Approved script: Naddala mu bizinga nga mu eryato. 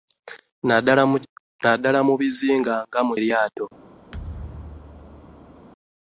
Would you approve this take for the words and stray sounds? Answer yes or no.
no